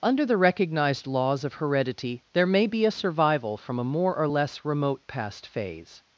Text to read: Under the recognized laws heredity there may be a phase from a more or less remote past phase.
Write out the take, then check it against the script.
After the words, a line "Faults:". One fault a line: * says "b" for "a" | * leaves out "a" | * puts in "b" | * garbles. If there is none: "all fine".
Under the recognized laws of heredity there may be a survival from a more or less remote past phase.
Faults:
* puts in "of"
* says "survival" for "phase"